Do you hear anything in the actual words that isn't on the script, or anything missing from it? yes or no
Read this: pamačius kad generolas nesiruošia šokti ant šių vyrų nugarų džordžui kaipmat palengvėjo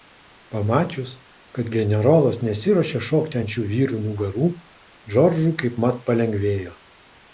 no